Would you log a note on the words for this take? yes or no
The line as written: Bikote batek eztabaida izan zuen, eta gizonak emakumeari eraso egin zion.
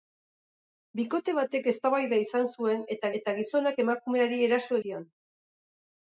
yes